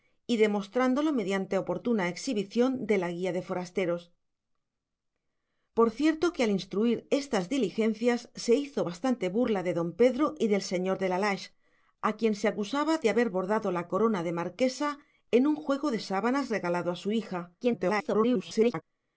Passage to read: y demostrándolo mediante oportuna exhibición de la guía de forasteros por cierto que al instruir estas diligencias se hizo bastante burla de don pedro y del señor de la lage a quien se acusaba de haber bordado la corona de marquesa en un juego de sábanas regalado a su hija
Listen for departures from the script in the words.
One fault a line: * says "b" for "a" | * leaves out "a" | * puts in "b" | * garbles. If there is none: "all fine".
* garbles